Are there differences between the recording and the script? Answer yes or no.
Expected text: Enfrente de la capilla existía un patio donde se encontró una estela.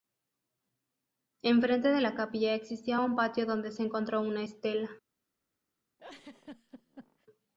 no